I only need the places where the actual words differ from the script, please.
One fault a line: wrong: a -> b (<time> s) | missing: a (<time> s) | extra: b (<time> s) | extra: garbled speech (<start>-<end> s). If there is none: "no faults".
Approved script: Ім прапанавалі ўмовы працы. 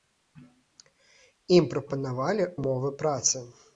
no faults